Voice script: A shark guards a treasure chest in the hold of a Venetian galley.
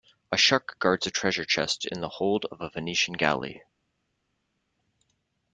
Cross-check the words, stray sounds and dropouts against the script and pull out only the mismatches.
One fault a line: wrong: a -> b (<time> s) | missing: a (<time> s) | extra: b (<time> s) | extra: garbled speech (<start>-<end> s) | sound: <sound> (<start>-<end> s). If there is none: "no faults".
no faults